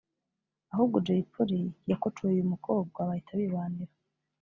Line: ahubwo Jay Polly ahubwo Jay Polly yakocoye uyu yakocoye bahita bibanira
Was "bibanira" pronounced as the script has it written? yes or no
yes